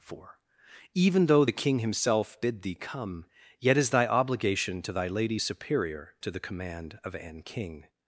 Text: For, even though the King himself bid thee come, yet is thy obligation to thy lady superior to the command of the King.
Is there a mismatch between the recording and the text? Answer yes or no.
yes